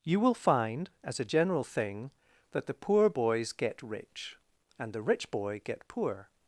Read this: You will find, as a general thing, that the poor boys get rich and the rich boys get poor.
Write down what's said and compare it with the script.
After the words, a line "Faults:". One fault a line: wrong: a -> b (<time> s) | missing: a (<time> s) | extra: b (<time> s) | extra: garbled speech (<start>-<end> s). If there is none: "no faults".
You will find, as a general thing, that the poor boys get rich and the rich boy get poor.
Faults:
wrong: boys -> boy (5.3 s)